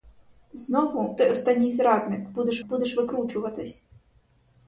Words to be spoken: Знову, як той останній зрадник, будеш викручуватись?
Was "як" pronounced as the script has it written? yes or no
no